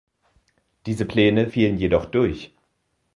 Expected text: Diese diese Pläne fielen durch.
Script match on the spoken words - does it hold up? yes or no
no